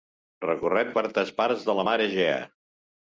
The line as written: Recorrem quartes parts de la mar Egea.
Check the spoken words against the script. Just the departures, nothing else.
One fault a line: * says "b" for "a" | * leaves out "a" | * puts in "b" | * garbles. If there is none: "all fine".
all fine